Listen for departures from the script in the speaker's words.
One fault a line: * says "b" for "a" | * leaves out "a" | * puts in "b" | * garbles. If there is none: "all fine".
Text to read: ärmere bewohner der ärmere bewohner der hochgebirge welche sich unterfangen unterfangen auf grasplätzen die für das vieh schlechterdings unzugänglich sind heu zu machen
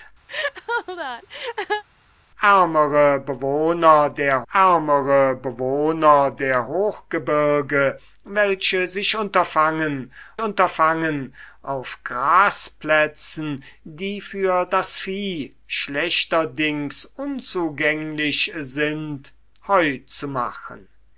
all fine